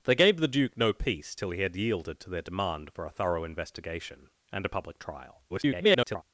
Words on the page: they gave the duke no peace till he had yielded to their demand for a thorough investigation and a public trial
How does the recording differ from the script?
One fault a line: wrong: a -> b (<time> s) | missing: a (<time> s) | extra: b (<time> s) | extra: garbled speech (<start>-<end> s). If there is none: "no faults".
extra: garbled speech (5.5-6.2 s)